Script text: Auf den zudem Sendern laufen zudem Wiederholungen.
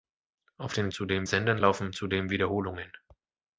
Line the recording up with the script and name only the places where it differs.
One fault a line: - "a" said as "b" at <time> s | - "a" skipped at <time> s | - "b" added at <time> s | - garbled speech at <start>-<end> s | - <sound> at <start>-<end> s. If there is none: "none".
none